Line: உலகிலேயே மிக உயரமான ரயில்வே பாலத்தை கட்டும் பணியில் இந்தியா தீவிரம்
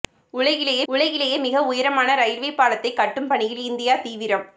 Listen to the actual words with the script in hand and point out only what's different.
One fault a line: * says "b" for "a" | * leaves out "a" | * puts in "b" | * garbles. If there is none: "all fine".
* puts in "உலகிலேயே"